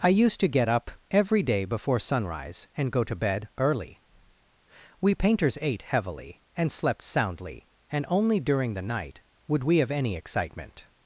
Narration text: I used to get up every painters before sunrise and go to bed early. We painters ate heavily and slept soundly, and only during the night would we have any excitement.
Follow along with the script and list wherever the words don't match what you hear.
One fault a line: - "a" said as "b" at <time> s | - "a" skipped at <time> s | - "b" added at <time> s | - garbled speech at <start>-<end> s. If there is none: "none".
- "painters" said as "day" at 1.4 s